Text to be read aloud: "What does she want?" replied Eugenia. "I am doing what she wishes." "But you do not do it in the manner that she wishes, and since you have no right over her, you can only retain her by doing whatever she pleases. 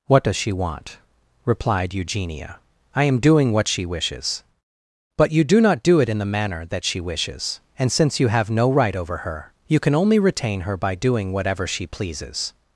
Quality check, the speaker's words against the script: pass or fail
pass